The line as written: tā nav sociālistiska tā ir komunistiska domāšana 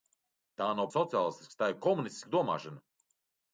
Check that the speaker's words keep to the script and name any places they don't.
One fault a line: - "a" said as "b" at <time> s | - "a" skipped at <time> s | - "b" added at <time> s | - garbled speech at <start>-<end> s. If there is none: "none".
none